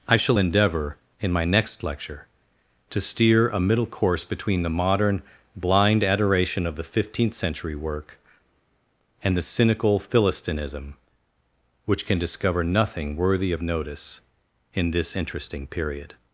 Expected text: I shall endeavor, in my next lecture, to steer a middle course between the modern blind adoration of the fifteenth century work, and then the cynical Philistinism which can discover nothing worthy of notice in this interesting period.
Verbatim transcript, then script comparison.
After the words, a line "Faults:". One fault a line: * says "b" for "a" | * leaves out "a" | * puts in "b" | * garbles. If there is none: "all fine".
I shall endeavor, in my next lecture, to steer a middle course between the modern blind adoration of the fifteenth century work, and the cynical Philistinism which can discover nothing worthy of notice in this interesting period.
Faults:
* leaves out "then"